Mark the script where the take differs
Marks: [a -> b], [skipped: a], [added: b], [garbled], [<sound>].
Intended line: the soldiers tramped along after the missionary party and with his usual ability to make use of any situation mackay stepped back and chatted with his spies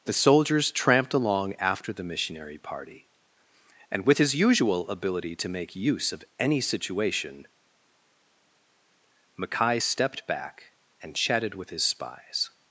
the soldiers tramped along after the missionary party and with his usual ability to make use of any situation mackay stepped back and chatted with his spies